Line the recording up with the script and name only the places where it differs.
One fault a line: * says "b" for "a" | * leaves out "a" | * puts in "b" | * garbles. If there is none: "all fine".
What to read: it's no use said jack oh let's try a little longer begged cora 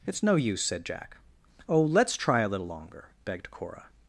all fine